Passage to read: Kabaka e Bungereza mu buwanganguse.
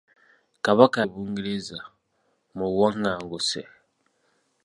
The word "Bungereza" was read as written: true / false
true